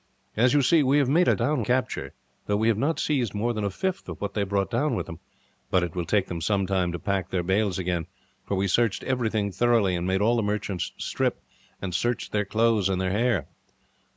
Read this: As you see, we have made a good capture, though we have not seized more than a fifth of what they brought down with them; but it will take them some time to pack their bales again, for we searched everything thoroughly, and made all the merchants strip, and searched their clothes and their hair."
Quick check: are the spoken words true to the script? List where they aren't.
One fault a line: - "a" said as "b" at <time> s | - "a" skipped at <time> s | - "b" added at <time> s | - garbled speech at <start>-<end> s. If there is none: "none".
- "good" said as "down" at 1.4 s